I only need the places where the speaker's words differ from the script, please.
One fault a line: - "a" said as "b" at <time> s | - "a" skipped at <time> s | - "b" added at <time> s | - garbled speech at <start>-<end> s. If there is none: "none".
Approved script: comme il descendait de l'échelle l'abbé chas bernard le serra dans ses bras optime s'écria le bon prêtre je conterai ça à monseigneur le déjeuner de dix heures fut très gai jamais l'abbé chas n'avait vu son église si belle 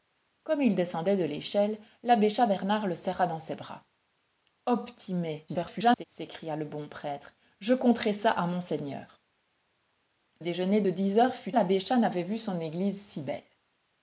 - garbled speech at 5.5-6.0 s
- "le" skipped at 9.2 s
- "très gai jamais" skipped at 11.5 s